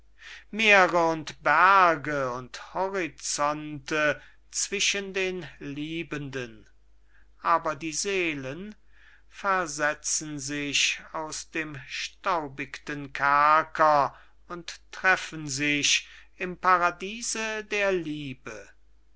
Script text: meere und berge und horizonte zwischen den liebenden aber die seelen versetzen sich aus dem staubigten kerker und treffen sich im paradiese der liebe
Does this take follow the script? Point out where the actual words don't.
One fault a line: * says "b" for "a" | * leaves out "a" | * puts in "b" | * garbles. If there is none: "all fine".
all fine